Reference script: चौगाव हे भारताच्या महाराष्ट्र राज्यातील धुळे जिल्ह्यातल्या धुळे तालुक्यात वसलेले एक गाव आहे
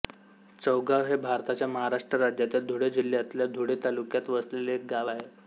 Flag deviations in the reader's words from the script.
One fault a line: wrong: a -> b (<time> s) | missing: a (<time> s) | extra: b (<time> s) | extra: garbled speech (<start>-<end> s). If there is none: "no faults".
no faults